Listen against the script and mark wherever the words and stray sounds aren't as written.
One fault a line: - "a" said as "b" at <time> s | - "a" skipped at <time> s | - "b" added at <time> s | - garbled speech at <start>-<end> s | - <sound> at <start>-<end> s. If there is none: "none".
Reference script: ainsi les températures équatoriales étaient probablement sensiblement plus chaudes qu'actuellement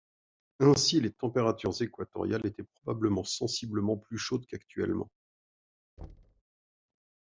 - thud at 6.0-6.4 s